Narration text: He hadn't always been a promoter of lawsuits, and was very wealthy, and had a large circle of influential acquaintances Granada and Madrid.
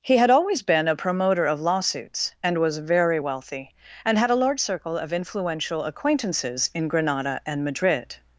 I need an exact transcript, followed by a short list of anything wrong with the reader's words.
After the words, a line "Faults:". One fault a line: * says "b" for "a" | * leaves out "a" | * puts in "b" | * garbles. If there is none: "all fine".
He had always been a promoter of lawsuits, and was very wealthy, and had a large circle of influential acquaintances in Granada and Madrid.
Faults:
* says "had" for "hadn't"
* puts in "in"